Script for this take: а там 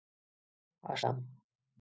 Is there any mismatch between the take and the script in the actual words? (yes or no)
no